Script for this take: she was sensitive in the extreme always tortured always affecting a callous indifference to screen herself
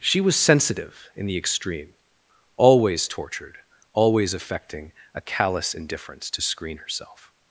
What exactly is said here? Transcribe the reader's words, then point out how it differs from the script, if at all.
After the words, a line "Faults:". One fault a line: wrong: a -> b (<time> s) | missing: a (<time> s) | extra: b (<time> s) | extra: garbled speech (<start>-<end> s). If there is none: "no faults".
she was sensitive in the extreme always tortured always affecting a callous indifference to screen herself
Faults:
no faults